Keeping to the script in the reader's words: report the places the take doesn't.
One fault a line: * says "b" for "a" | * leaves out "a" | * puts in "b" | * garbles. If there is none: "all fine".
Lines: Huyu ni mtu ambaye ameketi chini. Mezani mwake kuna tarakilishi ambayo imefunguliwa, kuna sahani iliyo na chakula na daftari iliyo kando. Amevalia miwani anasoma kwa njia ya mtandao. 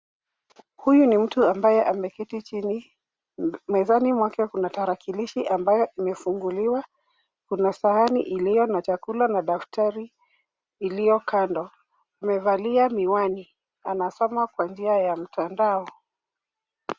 all fine